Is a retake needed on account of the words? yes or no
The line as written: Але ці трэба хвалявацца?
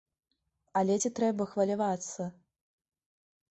no